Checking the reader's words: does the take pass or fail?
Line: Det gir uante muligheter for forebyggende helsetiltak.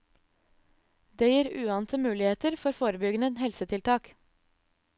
pass